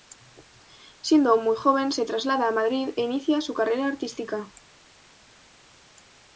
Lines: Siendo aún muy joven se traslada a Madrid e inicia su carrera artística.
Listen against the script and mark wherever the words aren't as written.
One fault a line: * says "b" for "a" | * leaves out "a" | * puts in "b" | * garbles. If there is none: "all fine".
all fine